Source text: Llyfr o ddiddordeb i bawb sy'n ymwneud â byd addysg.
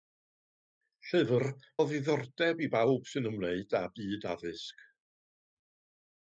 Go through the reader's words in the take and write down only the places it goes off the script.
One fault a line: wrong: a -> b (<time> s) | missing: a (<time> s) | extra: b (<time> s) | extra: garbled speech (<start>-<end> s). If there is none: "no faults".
no faults